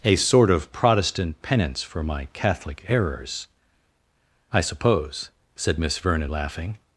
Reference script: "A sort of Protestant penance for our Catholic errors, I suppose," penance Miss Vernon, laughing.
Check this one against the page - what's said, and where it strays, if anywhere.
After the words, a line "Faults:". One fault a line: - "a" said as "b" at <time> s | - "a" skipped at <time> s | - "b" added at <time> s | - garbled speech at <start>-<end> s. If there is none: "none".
"A sort of Protestant penance for my Catholic errors, I suppose," said Miss Vernon, laughing.
Faults:
- "our" said as "my" at 2.0 s
- "penance" said as "said" at 5.6 s